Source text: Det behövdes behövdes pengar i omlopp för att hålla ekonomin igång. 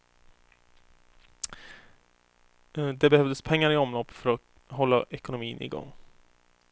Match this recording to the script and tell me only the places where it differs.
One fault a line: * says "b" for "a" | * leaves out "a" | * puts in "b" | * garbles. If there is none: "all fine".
* leaves out "behövdes"